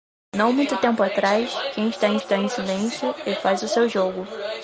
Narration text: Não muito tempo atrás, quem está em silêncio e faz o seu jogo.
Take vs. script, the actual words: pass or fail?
fail